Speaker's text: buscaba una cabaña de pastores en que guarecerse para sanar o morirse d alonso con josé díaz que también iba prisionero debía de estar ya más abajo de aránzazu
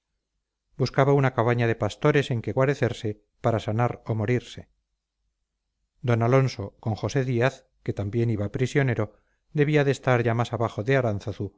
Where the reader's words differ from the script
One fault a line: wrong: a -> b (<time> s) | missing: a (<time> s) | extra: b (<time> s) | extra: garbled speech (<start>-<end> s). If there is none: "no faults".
no faults